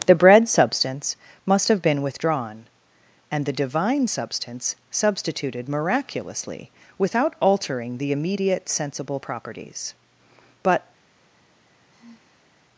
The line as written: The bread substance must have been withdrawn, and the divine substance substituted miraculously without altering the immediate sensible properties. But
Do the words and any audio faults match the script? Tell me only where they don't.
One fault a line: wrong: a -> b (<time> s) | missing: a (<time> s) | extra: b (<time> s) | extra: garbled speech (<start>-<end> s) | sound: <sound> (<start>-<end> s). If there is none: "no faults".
sound: sigh (11.9-12.5 s)